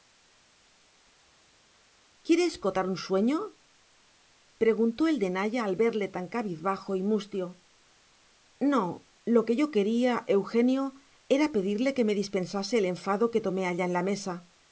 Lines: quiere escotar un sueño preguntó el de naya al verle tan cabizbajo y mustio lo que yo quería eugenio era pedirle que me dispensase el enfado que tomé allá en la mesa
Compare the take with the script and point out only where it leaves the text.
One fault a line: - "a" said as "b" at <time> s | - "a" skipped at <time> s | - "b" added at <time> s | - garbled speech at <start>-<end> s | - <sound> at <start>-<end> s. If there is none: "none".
- "no" added at 8.6 s